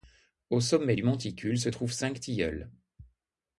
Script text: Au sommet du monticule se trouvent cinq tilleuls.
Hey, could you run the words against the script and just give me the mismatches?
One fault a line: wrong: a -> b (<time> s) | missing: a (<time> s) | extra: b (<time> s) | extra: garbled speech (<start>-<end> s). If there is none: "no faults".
no faults